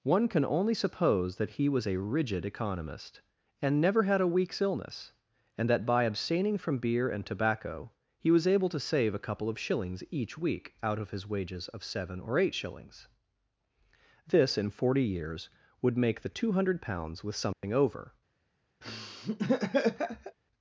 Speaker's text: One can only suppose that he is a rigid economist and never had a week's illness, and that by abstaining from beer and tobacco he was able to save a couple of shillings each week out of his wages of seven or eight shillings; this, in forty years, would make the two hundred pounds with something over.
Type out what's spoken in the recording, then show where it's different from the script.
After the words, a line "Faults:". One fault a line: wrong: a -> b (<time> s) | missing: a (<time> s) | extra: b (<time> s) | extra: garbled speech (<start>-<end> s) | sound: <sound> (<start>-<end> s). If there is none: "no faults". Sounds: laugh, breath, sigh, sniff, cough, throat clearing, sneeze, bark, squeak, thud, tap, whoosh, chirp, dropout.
One can only suppose that he was a rigid economist and never had a week's illness, and that by abstaining from beer and tobacco he was able to save a couple of shillings each week out of his wages of seven or eight shillings; this, in forty years, would make the two hundred pounds with something over.
Faults:
wrong: is -> was (1.7 s)
sound: dropout (17.5-17.6 s)
sound: laugh (18.8-20.4 s)